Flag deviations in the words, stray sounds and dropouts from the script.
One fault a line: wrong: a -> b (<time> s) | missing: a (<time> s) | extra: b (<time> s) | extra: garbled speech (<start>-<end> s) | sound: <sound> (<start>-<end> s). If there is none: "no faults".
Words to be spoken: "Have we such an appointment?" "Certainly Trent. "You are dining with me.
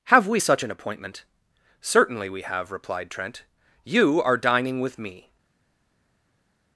extra: we have replied (2.3 s)